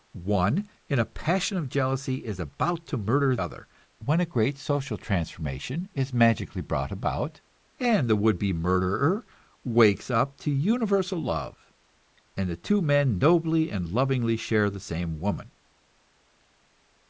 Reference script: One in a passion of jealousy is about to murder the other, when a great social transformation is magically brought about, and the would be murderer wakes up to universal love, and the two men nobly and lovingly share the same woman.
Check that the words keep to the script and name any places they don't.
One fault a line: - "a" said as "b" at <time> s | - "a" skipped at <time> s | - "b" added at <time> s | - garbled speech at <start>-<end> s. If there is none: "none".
- "the" skipped at 3.4 s